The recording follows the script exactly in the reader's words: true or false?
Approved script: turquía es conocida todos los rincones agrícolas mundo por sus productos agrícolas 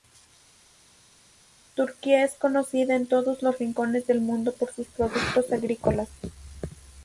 false